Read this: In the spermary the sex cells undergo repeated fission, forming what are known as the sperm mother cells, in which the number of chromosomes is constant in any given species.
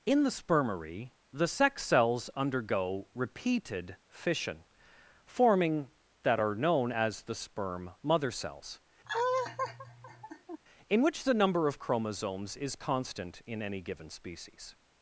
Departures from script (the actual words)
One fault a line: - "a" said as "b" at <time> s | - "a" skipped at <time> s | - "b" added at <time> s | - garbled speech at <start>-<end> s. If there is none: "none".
- "what" said as "that" at 6.2 s